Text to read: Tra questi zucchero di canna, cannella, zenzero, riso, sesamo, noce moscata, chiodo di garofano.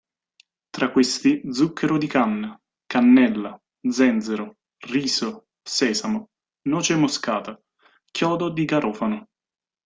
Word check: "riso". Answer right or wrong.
right